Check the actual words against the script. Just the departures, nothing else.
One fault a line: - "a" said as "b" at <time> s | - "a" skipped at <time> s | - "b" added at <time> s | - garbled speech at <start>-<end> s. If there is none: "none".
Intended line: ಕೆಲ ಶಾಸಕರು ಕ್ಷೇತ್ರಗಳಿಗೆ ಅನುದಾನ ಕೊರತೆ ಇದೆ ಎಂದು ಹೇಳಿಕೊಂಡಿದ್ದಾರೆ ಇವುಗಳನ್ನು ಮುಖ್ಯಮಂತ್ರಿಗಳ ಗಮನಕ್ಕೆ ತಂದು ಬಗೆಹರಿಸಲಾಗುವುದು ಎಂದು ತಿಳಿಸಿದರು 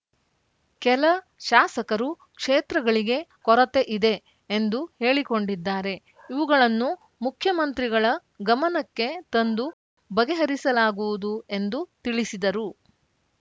- "ಅನುದಾನ" skipped at 3.2 s